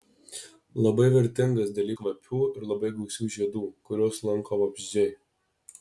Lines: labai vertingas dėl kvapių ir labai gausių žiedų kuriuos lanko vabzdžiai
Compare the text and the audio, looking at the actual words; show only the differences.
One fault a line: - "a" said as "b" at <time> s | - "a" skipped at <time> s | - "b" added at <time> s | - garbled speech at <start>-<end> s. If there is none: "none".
none